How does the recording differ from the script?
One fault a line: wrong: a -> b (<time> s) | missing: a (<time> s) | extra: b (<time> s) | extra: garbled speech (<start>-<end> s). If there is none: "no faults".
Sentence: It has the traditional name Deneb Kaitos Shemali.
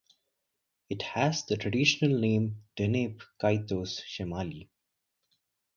no faults